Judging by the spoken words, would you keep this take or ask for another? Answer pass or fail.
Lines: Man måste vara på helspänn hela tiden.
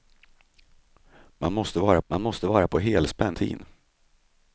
fail